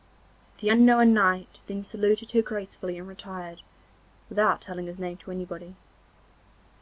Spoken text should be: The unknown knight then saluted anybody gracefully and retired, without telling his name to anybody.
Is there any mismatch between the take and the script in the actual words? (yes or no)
yes